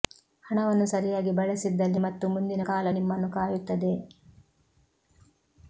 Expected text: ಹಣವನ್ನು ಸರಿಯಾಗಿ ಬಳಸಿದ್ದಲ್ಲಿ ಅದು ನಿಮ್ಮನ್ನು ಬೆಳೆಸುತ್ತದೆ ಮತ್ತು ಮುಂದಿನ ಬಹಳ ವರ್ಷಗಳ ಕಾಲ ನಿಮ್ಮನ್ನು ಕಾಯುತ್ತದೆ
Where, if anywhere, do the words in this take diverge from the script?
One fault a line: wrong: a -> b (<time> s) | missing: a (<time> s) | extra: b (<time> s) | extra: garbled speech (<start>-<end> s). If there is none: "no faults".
missing: ಅದು ನಿಮ್ಮನ್ನು ಬೆಳೆಸುತ್ತದೆ (2.0 s)
missing: ಬಹಳ ವರ್ಷಗಳ (2.6 s)